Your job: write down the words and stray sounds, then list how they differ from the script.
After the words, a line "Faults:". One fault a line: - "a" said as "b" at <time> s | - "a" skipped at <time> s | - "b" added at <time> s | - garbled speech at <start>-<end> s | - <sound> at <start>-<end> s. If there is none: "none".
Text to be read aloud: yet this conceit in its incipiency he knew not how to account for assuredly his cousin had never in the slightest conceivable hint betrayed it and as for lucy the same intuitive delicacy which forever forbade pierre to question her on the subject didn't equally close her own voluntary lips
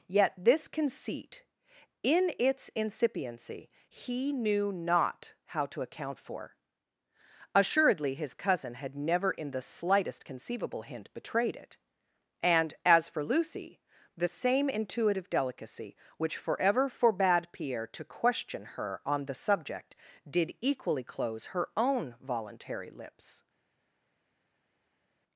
yet this conceit in its incipiency he knew not how to account for assuredly his cousin had never in the slightest conceivable hint betrayed it and as for lucy the same intuitive delicacy which forever forbade pierre to question her on the subject did equally close her own voluntary lips
Faults:
- "didn't" said as "did" at 20.3 s